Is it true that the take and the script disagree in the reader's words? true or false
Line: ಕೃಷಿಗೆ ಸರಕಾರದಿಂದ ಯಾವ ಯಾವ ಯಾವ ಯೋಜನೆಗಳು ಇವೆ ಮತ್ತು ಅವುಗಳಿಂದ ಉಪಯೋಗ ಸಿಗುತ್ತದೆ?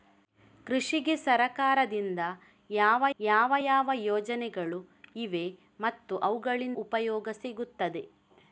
false